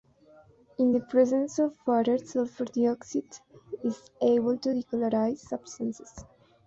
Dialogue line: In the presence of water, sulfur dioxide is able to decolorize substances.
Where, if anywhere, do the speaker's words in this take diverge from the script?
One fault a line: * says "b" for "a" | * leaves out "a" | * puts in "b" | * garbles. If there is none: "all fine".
all fine